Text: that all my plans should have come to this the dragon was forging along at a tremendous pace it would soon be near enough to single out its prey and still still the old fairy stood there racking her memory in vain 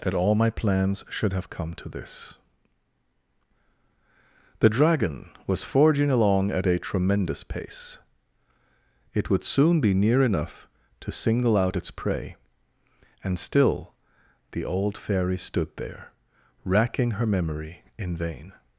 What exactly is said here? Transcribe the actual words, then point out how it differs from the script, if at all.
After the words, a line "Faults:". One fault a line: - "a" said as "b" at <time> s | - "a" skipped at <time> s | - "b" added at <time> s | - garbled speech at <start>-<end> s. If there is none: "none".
that all my plans should have come to this the dragon was forging along at a tremendous pace it would soon be near enough to single out its prey and still the old fairy stood there racking her memory in vain
Faults:
- "still" skipped at 13.9 s